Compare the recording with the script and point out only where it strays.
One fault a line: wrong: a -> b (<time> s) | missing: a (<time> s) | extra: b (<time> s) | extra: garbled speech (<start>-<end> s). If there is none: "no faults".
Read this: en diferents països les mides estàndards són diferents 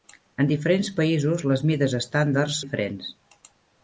missing: són (2.6 s)